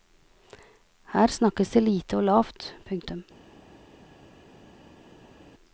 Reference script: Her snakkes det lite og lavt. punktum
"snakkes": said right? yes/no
yes